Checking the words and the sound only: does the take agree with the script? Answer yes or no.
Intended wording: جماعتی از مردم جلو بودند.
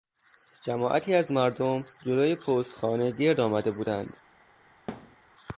no